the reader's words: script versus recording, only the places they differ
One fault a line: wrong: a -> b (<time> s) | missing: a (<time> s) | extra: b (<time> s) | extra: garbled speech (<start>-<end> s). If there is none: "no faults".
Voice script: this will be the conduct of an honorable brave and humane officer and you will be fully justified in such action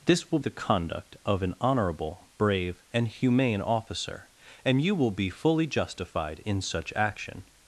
missing: be (0.4 s)